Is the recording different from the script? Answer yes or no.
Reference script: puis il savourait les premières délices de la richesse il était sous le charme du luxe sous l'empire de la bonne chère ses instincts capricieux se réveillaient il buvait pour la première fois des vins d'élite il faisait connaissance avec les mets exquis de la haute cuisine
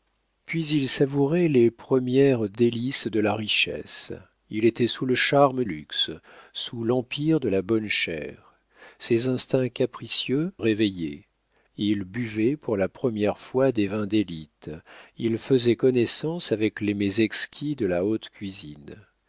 yes